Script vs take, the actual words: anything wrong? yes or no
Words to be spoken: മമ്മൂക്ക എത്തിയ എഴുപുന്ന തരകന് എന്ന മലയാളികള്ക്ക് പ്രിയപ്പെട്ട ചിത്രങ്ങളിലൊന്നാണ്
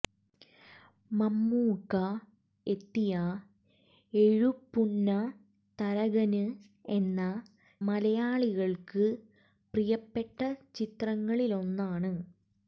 no